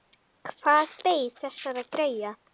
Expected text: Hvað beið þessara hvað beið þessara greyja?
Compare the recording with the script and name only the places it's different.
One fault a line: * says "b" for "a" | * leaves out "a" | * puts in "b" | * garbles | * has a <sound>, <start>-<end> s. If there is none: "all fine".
* leaves out "hvað beið þessara"